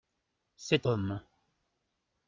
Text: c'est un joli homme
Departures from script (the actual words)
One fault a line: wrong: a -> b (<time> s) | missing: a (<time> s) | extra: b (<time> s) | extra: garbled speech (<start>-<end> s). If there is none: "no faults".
missing: un joli (0.9 s)